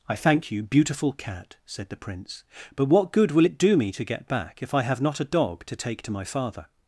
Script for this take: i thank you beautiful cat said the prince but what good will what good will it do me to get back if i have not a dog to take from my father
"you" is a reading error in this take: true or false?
false